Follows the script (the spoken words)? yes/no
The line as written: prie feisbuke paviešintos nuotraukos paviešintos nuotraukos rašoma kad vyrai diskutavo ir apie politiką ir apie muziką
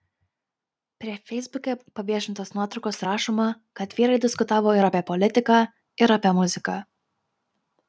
no